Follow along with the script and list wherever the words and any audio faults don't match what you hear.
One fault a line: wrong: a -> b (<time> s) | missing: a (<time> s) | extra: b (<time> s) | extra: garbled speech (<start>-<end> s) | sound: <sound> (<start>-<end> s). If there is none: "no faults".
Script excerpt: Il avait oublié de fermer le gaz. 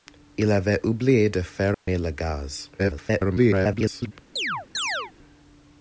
sound: dropout (1.7-1.9 s)
extra: garbled speech (2.8-4.1 s)
sound: chirp (4.4-5.1 s)